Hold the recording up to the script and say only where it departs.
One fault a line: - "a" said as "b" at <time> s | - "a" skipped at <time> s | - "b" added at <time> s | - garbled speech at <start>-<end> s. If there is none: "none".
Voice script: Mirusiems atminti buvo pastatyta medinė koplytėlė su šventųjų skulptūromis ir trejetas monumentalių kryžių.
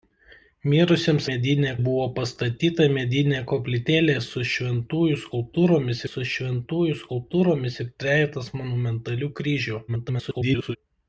- "atminti" said as "medinė" at 1.3 s
- "su šventųjų skulptūromis" added at 6.1 s
- garbled speech at 9.9-10.8 s